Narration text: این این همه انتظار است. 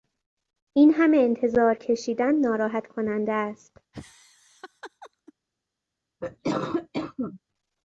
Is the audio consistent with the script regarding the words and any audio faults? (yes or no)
no